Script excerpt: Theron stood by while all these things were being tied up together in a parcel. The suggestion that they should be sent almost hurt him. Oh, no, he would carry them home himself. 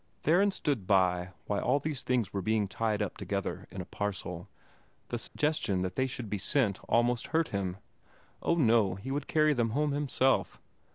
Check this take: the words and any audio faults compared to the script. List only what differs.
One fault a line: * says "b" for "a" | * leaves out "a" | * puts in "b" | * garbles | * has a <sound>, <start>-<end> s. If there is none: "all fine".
* has a dropout, 5.3-5.4 s